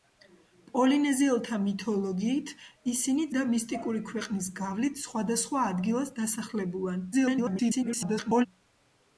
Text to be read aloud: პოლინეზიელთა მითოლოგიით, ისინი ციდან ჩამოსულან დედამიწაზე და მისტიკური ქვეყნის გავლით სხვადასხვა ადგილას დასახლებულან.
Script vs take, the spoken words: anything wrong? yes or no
yes